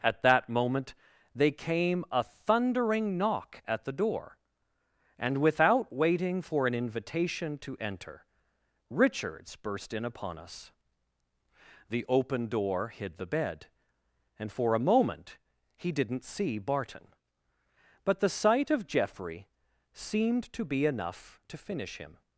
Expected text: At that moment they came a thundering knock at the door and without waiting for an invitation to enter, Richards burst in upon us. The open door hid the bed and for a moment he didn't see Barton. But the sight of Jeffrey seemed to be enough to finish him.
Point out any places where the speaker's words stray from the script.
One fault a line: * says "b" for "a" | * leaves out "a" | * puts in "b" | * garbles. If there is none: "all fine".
all fine